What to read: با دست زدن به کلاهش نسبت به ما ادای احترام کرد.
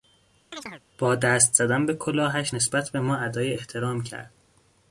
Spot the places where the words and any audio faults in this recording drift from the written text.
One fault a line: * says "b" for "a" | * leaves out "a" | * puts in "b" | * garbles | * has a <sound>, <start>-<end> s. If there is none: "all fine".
* has a chirp, 0.5-0.8 s